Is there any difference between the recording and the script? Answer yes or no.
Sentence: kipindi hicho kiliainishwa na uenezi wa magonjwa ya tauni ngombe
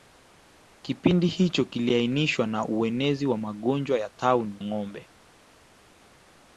no